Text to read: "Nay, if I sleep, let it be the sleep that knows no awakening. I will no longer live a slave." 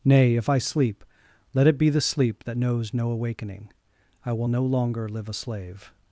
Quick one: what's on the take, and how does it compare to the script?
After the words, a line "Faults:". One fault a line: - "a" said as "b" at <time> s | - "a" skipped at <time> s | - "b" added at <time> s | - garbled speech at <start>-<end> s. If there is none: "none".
"Nay, if I sleep, let it be the sleep that knows no awakening. I will no longer live a slave."
Faults:
none